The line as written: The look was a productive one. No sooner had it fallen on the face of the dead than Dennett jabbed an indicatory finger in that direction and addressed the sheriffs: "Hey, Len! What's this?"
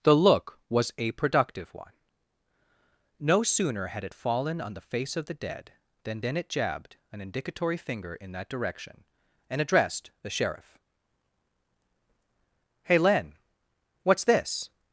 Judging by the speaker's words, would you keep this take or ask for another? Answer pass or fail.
fail